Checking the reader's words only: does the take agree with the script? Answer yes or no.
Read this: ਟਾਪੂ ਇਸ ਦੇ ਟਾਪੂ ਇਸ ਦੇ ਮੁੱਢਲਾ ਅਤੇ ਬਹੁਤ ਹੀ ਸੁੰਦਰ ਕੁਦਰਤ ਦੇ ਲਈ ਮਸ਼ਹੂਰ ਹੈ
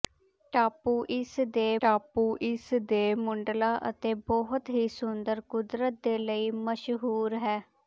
yes